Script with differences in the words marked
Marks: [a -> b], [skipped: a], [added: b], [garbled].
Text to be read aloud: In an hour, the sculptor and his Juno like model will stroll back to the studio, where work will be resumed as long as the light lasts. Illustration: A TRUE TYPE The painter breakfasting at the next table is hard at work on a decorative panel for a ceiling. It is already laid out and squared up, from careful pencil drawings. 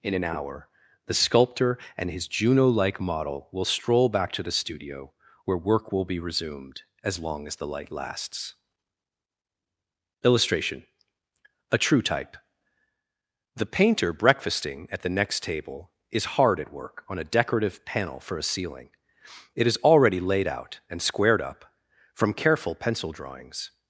In an hour, the sculptor and his Juno like model will stroll back to the studio, where work will be resumed as long as the light lasts. Illustration: A TRUE TYPE The painter breakfasting at the next table is hard at work on a decorative panel for a ceiling. It is already laid out and squared up, from careful pencil drawings.